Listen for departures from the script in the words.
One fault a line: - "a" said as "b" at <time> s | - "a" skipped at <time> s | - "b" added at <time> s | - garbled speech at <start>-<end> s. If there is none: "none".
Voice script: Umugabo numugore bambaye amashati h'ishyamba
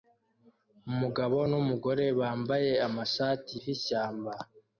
none